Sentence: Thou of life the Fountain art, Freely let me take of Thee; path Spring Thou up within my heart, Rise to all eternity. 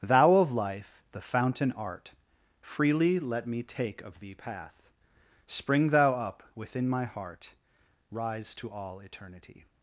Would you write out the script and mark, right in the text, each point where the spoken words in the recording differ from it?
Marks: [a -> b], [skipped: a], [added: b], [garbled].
Thou of life the Fountain art, Freely let me take of Thee; path Spring Thou up within my heart, Rise to all eternity.